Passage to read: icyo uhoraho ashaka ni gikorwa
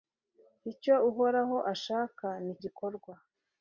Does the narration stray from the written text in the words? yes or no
no